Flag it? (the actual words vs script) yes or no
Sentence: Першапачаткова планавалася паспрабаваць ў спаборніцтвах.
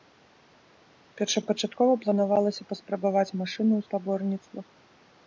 yes